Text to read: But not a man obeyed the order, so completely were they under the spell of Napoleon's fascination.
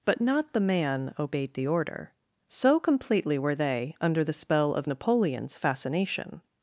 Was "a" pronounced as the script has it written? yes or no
no